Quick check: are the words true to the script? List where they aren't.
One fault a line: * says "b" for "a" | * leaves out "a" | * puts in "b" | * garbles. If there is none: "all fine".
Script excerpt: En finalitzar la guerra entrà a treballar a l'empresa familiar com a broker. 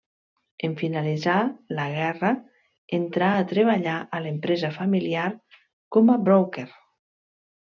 all fine